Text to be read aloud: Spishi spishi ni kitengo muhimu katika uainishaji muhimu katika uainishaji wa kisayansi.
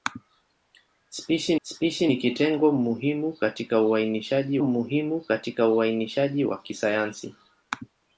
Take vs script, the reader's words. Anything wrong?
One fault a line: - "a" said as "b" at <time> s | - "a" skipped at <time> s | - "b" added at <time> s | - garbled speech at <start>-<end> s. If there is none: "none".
none